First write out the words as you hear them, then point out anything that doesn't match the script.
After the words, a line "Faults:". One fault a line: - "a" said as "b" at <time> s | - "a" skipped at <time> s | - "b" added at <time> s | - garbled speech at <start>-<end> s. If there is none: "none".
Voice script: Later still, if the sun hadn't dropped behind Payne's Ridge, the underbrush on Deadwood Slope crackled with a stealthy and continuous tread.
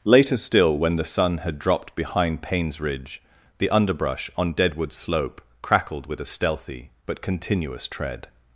Later still, when the sun had dropped behind Payne's Ridge, the underbrush on Deadwood Slope crackled with a stealthy but continuous tread.
Faults:
- "if" said as "when" at 0.8 s
- "hadn't" said as "had" at 1.4 s
- "and" said as "but" at 7.0 s